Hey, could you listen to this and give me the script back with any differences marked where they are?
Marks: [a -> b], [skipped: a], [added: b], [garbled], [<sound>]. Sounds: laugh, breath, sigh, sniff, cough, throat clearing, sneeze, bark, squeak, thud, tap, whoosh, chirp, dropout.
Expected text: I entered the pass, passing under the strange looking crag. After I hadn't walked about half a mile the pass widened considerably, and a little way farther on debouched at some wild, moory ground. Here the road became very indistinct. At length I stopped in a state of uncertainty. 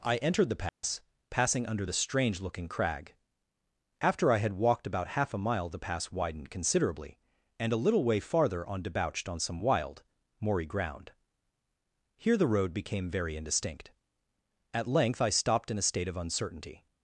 I entered the pass, [dropout] passing under the strange looking crag. After I [hadn't -> had] walked about half a mile the pass widened considerably, and a little way farther on debouched [at -> on] some wild, moory ground. Here the road became very indistinct. At length I stopped in a state of uncertainty.